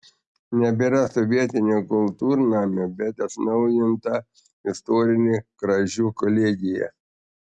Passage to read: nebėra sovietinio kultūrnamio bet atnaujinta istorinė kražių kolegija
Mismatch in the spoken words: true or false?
false